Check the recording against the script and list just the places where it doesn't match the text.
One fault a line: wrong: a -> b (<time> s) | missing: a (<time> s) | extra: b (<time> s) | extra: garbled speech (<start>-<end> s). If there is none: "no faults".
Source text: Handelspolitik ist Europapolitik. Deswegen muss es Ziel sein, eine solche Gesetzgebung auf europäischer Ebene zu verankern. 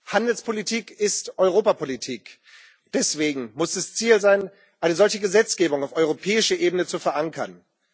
no faults